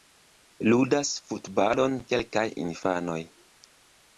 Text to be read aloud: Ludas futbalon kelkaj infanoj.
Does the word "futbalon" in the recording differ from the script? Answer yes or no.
no